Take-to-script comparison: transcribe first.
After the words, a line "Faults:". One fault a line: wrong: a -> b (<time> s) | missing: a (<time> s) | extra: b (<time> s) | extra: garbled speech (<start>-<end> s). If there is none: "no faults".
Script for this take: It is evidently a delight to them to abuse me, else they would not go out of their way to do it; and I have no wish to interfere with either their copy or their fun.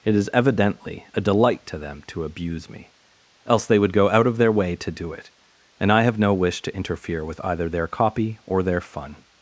It is evidently a delight to them to abuse me, else they would go out of their way to do it; and I have no wish to interfere with either their copy or their fun.
Faults:
missing: not (3.9 s)